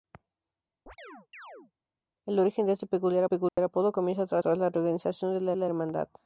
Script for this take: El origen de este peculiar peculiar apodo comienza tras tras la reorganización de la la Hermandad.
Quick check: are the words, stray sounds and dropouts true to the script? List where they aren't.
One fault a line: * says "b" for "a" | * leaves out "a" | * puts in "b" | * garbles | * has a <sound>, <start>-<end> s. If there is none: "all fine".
* has a chirp, 0.9-1.7 s
* has a dropout, 3.5-3.6 s